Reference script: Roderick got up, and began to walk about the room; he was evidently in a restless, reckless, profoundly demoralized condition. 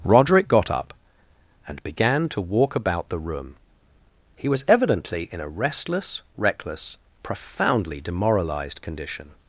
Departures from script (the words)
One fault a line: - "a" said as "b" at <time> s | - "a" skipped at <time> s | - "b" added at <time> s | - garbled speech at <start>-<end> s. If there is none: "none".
none